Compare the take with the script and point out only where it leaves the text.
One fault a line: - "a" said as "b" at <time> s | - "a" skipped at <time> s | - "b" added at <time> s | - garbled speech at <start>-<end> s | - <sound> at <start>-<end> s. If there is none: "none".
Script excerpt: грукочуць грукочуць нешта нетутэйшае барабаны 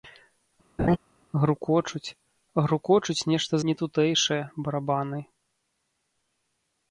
- laugh at 0.8-1.0 s